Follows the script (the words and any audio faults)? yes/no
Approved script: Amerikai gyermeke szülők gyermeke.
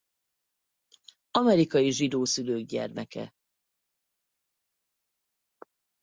no